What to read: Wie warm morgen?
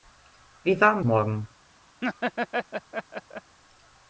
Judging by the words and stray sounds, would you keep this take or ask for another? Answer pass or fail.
fail